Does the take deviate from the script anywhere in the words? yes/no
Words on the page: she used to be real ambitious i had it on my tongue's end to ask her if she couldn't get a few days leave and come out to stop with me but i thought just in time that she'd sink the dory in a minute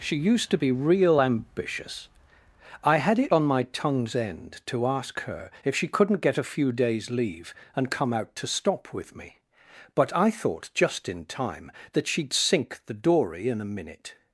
no